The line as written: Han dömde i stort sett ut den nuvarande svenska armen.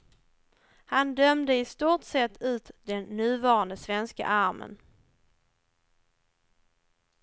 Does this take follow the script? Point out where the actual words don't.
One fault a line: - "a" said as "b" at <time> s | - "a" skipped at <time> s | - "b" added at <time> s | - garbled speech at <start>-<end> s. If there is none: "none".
none